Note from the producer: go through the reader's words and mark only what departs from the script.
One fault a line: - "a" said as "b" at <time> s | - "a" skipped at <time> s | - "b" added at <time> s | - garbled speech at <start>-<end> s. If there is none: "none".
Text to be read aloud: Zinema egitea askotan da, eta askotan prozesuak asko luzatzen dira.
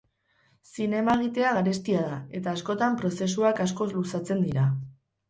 - "askotan" said as "garestia" at 1.6 s